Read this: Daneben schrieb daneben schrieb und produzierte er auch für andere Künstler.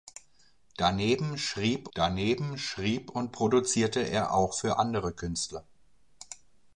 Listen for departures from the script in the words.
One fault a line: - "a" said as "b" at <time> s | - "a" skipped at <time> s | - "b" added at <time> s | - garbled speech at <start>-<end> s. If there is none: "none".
none